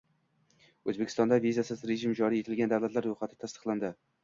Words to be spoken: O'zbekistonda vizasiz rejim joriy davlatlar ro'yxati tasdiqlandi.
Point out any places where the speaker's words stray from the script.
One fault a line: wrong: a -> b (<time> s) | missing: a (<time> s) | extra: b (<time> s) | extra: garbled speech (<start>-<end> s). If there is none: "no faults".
extra: etilgan (2.5 s)